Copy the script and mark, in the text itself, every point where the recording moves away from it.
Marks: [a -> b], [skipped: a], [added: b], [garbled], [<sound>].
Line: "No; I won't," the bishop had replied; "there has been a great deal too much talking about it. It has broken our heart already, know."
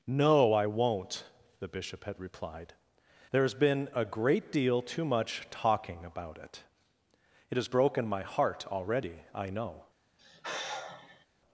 "No; I won't," the bishop had replied; "there has been a great deal too much talking about it. It has broken [our -> my] heart already, [added: I] know." [sigh]